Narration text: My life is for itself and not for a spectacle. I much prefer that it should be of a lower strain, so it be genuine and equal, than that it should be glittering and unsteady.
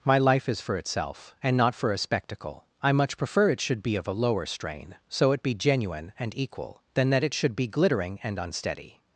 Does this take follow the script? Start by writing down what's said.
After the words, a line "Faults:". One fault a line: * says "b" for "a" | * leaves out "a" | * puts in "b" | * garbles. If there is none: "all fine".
My life is for itself and not for a spectacle. I much prefer it should be of a lower strain, so it be genuine and equal, than that it should be glittering and unsteady.
Faults:
* leaves out "that"